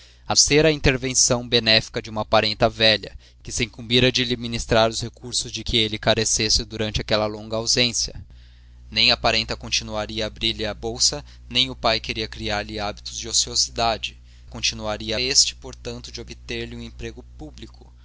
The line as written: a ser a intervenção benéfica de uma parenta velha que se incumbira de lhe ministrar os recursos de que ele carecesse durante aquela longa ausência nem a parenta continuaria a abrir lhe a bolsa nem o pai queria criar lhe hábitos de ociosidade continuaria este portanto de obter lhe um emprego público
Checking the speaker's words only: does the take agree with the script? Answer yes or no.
yes